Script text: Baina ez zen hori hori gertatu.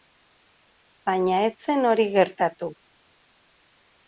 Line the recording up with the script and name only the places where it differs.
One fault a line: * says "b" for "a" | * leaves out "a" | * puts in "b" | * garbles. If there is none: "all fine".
* leaves out "hori"